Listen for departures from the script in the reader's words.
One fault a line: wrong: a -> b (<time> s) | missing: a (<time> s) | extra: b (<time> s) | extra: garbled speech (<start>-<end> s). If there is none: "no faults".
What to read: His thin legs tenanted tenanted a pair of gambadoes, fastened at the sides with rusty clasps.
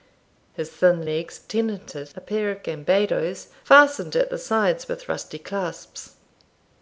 missing: tenanted (2.1 s)